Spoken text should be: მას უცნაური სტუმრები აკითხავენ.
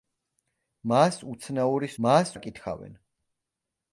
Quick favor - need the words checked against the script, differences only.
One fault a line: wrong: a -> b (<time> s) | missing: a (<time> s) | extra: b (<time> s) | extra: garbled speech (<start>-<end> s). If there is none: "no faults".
wrong: სტუმრები -> მას (2.0 s)